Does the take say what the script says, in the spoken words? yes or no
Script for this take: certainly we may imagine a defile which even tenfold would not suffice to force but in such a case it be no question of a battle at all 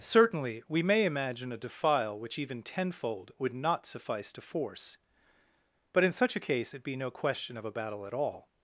yes